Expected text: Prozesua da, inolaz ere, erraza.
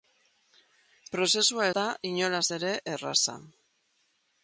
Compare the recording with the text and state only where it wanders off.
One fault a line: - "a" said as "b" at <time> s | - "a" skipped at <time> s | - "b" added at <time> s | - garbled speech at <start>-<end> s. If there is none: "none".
none